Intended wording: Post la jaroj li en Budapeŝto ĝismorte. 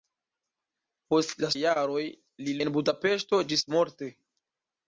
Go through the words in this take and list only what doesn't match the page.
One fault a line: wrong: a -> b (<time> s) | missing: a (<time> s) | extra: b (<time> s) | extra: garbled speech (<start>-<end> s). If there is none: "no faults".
no faults